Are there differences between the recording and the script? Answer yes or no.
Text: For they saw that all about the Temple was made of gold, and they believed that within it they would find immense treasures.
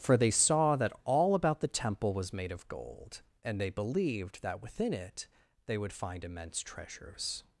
no